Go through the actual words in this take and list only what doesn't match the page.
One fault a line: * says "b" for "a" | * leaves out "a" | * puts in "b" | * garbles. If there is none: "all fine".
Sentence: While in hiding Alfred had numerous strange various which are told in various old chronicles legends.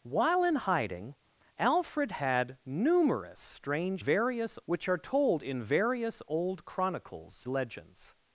all fine